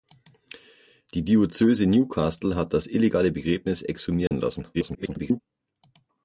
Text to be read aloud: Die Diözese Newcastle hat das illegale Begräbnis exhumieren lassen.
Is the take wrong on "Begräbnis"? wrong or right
right